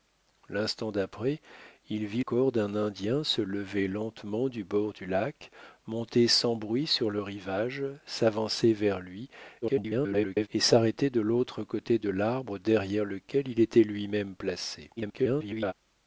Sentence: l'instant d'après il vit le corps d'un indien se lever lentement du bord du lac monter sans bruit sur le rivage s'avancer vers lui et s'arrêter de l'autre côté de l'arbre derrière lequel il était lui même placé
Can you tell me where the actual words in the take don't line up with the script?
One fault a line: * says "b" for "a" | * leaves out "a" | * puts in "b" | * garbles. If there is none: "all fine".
* leaves out "le"
* garbles
* garbles